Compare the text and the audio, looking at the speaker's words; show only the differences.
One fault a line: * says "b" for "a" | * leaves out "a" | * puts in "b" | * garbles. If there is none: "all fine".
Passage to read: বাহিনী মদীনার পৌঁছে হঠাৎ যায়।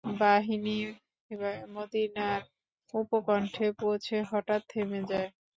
* puts in "উপকণ্ঠে"
* puts in "থেমে"